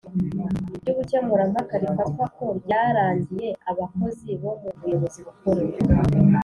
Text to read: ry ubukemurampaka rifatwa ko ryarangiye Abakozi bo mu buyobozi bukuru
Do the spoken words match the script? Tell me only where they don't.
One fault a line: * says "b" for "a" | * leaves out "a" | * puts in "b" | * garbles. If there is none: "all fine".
all fine